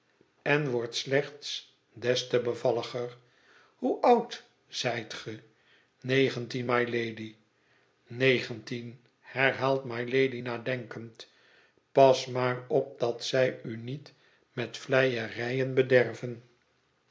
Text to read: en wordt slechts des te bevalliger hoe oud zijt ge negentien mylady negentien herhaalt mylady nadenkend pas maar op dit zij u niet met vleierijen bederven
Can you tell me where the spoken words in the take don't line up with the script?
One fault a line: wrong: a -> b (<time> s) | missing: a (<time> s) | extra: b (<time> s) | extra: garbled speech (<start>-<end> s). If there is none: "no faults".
wrong: dit -> dat (13.0 s)